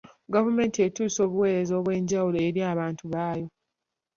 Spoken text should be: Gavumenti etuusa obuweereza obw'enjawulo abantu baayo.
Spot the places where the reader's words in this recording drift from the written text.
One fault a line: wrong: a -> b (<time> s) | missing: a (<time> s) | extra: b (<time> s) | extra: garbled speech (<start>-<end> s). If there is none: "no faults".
extra: eri (2.5 s)